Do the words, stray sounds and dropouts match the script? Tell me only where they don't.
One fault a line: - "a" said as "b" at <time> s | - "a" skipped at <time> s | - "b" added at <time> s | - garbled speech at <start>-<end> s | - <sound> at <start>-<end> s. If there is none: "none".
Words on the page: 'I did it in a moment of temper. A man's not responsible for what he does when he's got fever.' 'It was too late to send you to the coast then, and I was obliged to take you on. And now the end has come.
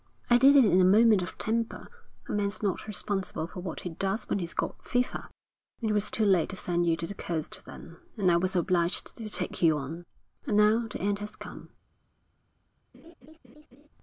- laugh at 12.9-13.9 s